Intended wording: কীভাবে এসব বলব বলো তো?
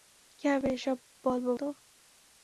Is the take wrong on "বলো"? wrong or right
wrong